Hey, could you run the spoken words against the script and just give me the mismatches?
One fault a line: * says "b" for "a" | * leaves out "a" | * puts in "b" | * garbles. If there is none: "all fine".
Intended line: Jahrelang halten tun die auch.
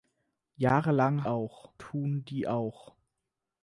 * says "auch" for "halten"